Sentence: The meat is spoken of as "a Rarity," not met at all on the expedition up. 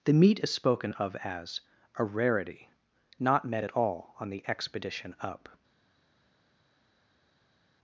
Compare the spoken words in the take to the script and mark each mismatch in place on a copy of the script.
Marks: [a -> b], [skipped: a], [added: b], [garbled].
The meat is spoken of as "a Rarity," not met at all on the expedition up.